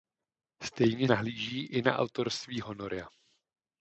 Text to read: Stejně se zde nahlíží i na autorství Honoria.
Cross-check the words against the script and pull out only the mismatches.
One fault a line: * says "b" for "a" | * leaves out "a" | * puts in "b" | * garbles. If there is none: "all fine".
* leaves out "se zde"